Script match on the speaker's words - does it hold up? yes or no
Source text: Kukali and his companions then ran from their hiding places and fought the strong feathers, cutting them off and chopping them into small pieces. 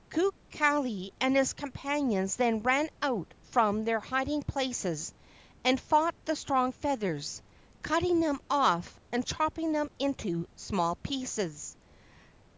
no